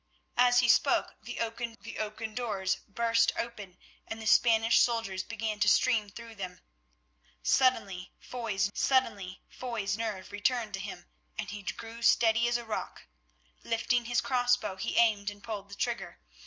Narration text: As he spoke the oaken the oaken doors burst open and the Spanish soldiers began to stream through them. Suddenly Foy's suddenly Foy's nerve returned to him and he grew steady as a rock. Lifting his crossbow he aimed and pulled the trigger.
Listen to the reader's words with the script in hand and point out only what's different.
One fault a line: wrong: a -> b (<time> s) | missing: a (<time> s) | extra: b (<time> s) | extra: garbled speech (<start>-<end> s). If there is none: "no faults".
no faults